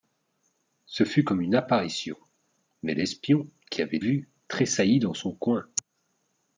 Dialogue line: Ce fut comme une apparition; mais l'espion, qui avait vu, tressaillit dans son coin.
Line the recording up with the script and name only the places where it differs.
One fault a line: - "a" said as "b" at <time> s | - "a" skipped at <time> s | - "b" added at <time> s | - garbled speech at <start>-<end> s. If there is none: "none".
none